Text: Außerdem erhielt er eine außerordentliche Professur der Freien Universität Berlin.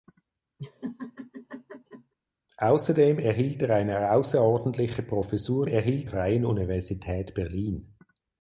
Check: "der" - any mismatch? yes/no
yes